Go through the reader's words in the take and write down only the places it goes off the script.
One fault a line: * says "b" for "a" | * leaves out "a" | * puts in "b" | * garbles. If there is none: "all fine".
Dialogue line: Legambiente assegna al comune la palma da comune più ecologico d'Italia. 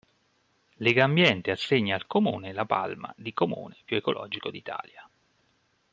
* says "di" for "da"